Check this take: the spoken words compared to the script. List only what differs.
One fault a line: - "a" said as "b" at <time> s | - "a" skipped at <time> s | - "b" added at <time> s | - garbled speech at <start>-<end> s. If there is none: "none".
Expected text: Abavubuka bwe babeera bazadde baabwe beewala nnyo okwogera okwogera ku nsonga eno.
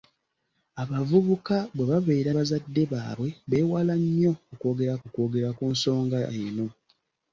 none